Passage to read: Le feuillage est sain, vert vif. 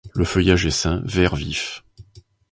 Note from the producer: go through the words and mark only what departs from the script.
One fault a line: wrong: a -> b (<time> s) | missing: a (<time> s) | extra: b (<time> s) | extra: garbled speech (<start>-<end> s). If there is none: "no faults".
no faults